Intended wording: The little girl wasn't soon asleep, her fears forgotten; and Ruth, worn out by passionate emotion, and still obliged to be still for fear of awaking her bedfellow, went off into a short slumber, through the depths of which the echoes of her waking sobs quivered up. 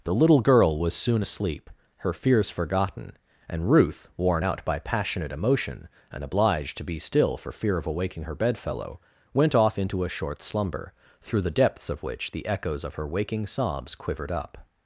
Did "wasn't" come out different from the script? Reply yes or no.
yes